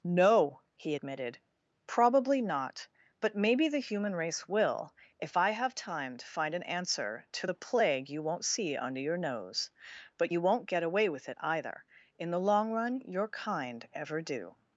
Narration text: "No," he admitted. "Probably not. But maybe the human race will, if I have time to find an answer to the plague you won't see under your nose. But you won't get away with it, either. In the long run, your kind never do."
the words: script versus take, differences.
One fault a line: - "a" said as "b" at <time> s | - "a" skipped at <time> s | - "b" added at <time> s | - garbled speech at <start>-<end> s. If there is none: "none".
- "never" said as "ever" at 13.9 s